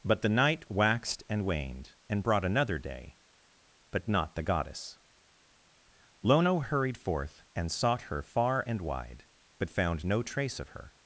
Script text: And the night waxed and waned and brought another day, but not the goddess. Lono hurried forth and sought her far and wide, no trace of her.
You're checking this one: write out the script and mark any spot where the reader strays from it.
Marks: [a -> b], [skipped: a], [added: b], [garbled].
[And -> But] the night waxed and waned and brought another day, but not the goddess. Lono hurried forth and sought her far and wide, [added: but found] no trace of her.